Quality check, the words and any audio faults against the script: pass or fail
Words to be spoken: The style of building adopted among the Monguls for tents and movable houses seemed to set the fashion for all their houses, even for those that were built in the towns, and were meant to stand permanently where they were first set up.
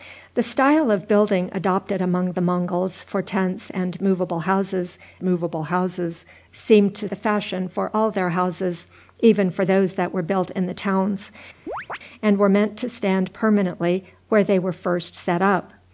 fail